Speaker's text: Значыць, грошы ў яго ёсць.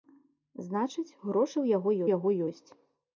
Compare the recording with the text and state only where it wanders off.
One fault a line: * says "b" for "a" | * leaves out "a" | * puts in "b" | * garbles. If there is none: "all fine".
* puts in "яго"